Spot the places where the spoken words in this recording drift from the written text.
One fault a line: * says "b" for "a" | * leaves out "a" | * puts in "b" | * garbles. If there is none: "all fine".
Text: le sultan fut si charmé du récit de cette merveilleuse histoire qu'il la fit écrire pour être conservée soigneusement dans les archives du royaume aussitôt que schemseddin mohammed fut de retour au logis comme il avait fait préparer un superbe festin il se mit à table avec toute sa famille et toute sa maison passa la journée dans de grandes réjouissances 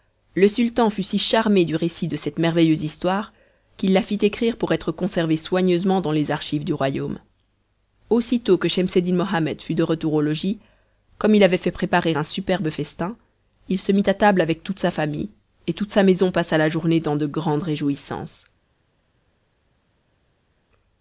all fine